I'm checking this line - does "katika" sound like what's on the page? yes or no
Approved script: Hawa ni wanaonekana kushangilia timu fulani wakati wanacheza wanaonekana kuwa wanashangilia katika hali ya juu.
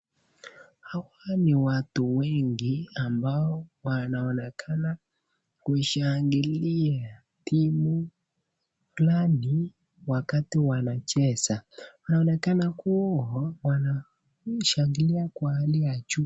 no